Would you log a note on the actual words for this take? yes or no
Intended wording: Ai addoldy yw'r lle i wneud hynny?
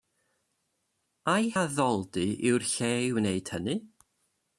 no